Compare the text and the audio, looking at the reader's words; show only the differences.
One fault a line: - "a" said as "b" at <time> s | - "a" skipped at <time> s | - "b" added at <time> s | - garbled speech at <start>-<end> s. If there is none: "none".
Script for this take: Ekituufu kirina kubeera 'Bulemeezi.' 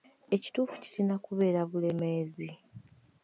none